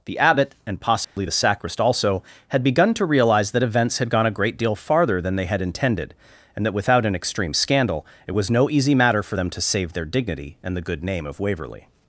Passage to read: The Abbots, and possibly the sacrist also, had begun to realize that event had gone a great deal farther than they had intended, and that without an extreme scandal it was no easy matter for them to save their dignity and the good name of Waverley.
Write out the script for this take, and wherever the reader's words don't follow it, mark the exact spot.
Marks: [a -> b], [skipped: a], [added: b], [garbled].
The [Abbots, -> Abbot] and possibly the sacrist also, had begun to realize that [event -> events] had gone a great deal farther than they had intended, and that without an extreme scandal it was no easy matter for them to save their dignity and the good name of Waverley.